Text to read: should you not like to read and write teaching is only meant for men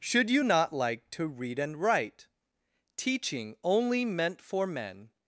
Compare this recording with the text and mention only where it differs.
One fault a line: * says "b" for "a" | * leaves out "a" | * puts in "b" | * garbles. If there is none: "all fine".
* leaves out "is"